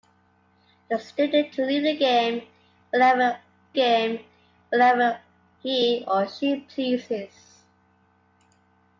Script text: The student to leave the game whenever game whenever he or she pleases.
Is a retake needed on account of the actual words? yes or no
no